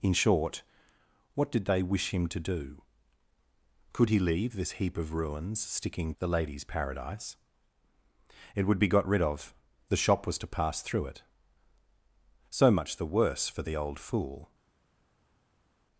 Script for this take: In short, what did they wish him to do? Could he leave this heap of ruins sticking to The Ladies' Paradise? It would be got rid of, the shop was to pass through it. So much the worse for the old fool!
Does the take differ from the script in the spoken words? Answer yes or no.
yes